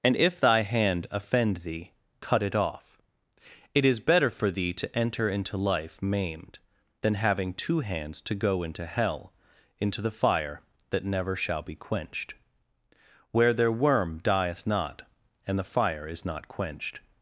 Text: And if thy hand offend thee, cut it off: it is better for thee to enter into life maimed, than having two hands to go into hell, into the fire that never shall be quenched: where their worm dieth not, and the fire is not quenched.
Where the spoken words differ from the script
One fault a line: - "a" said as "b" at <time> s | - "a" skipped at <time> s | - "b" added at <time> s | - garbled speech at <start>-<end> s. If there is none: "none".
none